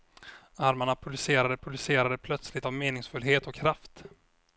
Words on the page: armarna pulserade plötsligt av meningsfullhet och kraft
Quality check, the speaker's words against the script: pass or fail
fail